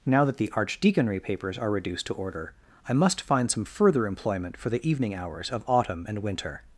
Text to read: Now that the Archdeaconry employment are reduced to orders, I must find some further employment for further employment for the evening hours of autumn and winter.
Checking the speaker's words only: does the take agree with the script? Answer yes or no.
no